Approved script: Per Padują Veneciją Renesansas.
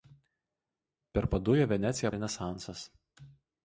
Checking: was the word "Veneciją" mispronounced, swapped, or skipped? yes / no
no